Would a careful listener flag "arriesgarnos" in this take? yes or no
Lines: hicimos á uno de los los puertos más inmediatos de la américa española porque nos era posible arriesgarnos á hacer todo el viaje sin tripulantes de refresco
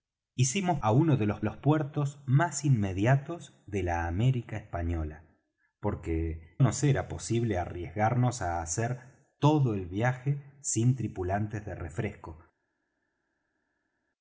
no